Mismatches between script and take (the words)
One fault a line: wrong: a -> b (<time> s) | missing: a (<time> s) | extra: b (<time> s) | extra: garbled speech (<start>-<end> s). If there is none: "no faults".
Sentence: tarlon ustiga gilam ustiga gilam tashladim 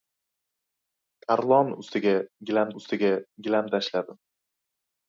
no faults